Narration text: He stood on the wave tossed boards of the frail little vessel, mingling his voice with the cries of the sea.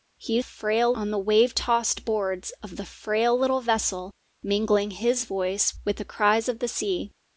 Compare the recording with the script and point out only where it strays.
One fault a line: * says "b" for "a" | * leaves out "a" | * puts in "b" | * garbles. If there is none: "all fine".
* says "frail" for "stood"